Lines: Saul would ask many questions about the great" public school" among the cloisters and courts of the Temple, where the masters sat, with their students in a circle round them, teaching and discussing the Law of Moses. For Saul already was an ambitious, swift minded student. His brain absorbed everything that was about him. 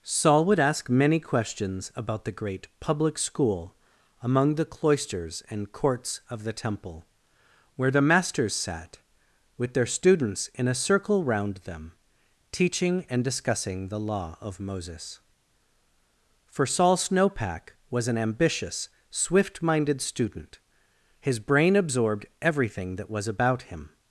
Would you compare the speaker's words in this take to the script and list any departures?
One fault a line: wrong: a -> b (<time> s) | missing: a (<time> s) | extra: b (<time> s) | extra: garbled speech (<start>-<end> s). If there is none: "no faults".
wrong: already -> snowpack (17.0 s)